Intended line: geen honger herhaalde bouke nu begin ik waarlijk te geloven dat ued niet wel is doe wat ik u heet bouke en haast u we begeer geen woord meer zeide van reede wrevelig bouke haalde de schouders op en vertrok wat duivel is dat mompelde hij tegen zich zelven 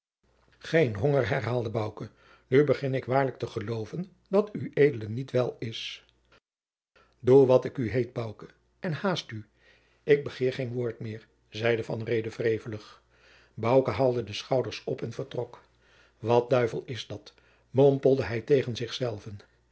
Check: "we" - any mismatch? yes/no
yes